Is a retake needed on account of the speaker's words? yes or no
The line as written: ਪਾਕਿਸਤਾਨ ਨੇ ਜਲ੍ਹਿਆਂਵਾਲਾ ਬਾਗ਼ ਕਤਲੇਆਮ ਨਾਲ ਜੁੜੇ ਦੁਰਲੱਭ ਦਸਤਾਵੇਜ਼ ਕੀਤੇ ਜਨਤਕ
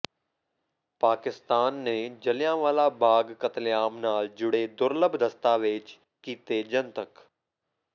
no